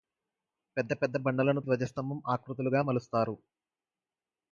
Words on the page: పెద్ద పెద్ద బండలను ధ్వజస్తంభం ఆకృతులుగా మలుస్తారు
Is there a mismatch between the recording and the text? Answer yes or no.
no